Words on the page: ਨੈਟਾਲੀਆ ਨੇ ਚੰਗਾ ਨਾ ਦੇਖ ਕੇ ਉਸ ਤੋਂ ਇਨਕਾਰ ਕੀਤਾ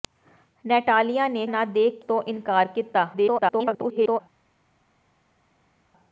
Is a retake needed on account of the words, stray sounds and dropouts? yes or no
yes